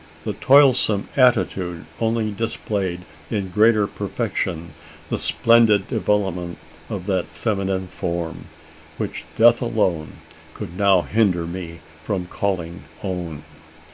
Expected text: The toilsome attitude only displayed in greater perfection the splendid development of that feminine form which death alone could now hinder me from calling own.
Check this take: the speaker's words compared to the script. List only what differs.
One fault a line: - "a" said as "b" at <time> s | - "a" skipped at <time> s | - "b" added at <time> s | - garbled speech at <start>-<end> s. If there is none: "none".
none